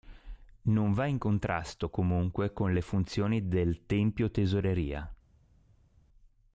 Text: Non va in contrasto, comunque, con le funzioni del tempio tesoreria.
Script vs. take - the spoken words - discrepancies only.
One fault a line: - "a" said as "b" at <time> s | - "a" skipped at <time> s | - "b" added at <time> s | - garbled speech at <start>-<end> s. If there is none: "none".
none